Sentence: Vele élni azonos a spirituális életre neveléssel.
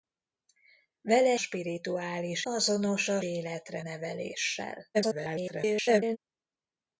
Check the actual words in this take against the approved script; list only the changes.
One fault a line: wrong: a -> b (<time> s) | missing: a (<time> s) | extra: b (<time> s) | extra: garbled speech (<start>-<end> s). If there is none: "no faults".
wrong: élni -> spirituális (1.4 s)
missing: spirituális (3.2 s)
extra: garbled speech (4.9-6.2 s)